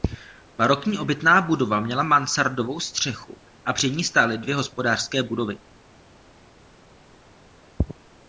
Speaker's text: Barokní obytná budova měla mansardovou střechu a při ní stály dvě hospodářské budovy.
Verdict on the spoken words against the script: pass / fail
pass